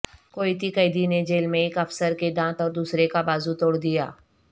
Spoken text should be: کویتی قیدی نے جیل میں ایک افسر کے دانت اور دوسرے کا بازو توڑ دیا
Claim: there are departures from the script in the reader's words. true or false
false